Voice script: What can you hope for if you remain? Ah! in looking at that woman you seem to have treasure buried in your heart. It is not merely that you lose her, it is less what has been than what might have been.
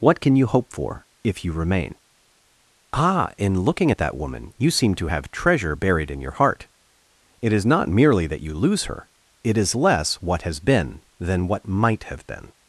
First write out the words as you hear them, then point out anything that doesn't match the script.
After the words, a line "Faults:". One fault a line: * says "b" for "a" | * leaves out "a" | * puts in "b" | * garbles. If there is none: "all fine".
What can you hope for if you remain? Ah! in looking at that woman you seem to have treasure buried in your heart. It is not merely that you lose her, it is less what has been than what might have been.
Faults:
all fine